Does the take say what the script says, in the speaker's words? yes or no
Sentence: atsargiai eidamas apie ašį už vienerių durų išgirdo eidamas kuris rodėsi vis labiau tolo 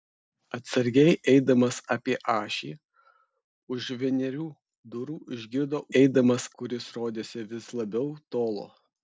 yes